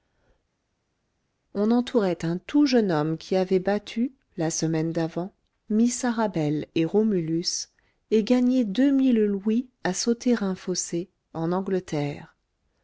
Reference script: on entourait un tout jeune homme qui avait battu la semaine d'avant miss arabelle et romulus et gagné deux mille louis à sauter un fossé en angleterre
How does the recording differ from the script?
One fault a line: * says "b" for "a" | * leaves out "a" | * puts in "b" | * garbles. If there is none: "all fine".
all fine